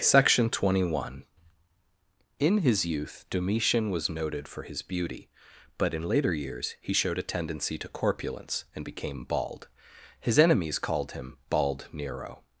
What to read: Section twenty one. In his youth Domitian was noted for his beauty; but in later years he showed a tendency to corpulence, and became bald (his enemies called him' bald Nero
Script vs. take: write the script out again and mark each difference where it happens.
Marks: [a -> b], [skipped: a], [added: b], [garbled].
Section twenty one. In his youth Domitian was noted for his beauty; but in later years he showed a tendency to corpulence, and became bald (his enemies called him' bald Nero